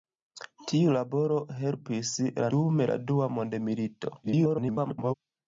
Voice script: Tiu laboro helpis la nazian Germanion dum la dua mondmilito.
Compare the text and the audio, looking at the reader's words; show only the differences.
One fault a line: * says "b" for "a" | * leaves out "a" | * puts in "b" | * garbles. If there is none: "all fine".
* leaves out "nazian Germanion"
* garbles